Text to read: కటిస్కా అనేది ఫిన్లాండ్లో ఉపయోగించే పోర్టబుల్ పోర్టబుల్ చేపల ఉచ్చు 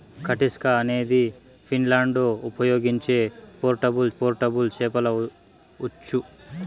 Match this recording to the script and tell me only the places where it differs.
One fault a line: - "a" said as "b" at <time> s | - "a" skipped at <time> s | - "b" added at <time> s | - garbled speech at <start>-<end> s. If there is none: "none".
none